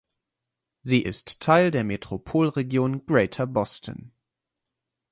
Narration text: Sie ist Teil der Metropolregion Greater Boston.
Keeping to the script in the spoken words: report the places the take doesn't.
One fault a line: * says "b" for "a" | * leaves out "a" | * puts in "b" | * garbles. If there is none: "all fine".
all fine